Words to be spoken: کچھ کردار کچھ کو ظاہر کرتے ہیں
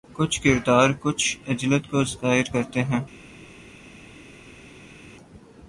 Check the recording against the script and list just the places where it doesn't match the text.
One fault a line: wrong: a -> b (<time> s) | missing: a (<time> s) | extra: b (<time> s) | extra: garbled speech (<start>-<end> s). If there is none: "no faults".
extra: عجلت (1.5 s)